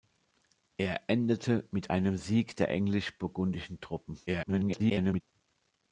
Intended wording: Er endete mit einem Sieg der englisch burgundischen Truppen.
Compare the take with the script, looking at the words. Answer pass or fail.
fail